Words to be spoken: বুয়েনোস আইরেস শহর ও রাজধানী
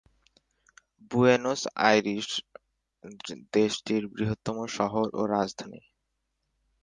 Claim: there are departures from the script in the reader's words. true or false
true